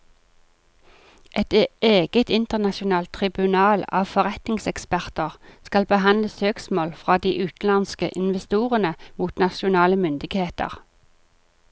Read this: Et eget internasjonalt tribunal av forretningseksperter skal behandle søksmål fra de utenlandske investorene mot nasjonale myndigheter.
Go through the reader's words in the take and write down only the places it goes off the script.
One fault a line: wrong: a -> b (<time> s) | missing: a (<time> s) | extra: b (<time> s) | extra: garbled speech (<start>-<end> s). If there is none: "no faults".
no faults